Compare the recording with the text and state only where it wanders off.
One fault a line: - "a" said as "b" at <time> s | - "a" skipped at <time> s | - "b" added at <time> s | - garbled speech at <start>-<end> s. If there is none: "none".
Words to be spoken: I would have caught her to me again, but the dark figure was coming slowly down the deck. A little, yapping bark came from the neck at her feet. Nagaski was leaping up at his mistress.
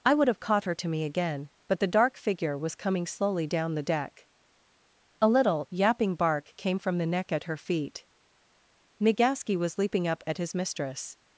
none